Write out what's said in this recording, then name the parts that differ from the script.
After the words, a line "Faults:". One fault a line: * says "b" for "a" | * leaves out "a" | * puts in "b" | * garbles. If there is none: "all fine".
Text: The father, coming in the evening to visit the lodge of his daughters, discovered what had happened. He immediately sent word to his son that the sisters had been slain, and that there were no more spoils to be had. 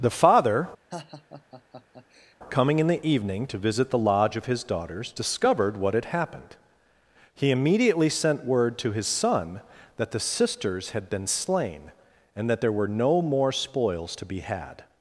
The father, coming in the evening to visit the lodge of his daughters, discovered what had happened. He immediately sent word to his son that the sisters had been slain, and that there were no more spoils to be had.
Faults:
all fine